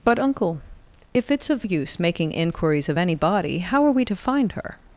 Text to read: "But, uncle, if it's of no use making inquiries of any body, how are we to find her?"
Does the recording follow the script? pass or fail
fail